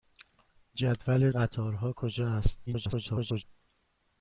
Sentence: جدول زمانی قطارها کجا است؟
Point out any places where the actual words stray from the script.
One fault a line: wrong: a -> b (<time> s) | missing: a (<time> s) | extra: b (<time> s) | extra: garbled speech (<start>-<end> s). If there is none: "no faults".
missing: زمانی (1.3 s)
extra: garbled speech (2.7-3.4 s)